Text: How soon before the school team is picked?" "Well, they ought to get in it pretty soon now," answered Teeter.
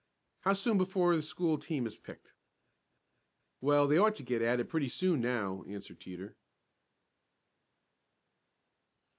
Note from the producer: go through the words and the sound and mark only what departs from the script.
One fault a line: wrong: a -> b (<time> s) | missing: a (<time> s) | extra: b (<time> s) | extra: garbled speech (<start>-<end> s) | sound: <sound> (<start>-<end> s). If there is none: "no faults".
wrong: in -> at (4.4 s)